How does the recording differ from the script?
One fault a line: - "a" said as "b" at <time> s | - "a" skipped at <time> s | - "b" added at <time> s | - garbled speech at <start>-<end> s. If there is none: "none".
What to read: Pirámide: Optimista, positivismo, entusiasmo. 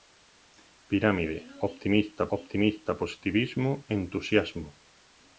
- "Optimista" added at 2.4 s